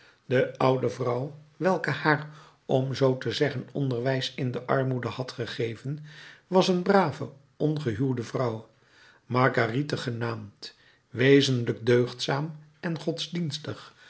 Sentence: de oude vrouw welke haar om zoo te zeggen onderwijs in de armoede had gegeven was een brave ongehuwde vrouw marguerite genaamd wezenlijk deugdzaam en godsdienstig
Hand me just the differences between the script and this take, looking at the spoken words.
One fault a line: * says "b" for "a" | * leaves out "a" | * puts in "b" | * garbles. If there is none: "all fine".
all fine